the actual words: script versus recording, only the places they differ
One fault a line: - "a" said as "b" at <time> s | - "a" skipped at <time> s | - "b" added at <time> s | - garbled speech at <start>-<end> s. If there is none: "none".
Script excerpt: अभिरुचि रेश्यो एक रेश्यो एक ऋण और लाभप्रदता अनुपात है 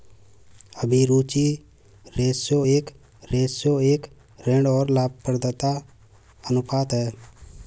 none